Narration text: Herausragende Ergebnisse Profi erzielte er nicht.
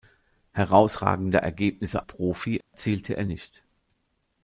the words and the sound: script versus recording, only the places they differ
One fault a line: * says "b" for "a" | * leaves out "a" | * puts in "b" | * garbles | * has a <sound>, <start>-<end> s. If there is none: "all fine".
* has a dropout, 2.6-2.7 s